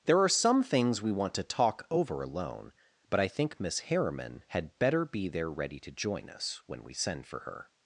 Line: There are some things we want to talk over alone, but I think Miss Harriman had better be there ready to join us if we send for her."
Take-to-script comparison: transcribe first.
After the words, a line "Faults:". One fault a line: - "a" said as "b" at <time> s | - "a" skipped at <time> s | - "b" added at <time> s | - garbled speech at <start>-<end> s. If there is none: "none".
There are some things we want to talk over alone, but I think Miss Harriman had better be there ready to join us when we send for her."
Faults:
- "if" said as "when" at 6.7 s